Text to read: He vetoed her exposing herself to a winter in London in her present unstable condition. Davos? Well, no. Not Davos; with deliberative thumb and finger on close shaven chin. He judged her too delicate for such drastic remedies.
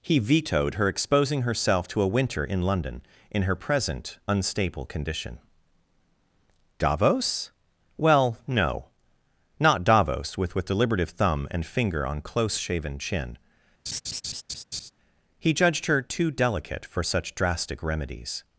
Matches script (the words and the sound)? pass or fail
fail